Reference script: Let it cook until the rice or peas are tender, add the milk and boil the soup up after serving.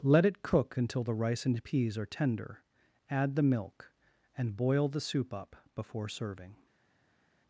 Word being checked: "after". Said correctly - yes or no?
no